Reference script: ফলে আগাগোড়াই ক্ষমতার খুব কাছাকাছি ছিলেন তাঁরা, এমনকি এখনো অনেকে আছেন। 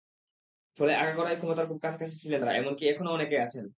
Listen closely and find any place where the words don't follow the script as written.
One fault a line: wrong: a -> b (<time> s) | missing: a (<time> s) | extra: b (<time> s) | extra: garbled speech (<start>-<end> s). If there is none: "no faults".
no faults